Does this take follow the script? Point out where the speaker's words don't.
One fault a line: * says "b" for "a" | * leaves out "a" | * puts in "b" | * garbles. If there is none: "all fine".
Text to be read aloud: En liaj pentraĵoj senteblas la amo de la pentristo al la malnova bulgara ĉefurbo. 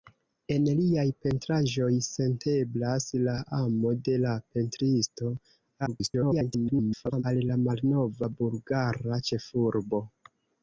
* garbles